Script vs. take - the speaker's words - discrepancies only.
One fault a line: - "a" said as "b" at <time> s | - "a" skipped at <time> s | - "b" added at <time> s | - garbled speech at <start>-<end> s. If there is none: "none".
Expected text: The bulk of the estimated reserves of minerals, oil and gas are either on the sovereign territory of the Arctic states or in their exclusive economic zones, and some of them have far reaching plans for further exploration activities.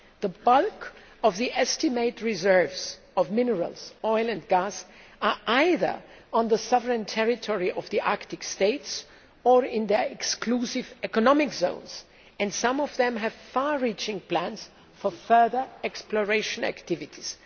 none